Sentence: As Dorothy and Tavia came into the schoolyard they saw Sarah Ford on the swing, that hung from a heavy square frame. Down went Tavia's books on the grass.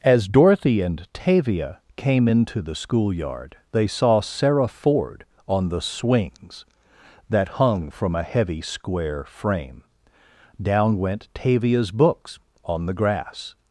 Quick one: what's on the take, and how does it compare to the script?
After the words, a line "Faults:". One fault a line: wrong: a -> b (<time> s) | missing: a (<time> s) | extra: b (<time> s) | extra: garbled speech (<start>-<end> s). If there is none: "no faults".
As Dorothy and Tavia came into the schoolyard they saw Sarah Ford on the swings, that hung from a heavy square frame. Down went Tavia's books on the grass.
Faults:
wrong: swing -> swings (5.8 s)